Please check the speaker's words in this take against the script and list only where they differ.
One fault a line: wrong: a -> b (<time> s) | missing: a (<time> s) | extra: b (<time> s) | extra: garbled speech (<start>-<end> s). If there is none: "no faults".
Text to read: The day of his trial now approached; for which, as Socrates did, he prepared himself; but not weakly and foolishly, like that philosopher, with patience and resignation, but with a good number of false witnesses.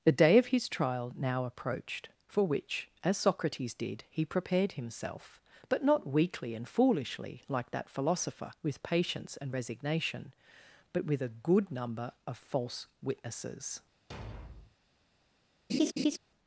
no faults